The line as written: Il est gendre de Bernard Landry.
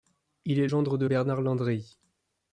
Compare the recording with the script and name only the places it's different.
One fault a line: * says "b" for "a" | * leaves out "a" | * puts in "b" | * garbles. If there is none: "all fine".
all fine